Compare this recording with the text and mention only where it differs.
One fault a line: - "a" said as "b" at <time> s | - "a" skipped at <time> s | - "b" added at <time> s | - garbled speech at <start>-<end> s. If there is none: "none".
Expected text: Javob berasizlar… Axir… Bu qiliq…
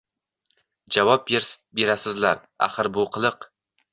none